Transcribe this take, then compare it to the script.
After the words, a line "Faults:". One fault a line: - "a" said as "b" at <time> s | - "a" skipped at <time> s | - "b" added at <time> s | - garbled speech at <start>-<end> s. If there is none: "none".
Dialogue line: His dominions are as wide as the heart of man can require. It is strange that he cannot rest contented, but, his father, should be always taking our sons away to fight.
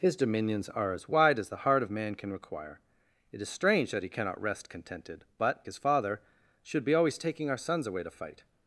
His dominions are as wide as the heart of man can require. It is strange that he cannot rest contented, but, his father, should be always taking our sons away to fight.
Faults:
none